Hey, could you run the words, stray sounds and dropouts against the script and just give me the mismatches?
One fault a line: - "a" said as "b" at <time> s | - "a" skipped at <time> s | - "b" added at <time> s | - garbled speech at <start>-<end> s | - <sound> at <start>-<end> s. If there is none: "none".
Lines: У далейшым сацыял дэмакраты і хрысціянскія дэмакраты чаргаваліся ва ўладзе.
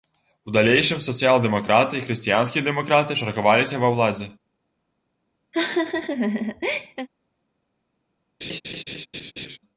- laugh at 5.5-7.1 s
- laugh at 8.4-9.6 s